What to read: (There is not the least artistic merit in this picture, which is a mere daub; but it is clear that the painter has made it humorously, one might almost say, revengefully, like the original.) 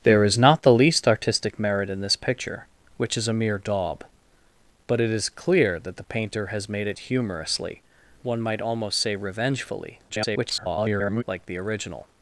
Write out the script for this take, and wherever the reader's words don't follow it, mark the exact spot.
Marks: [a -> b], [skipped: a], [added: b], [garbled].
(There is not the least artistic merit in this picture, which is a mere daub; but it is clear that the painter has made it humorously, one might almost say, revengefully, [garbled] like the original.)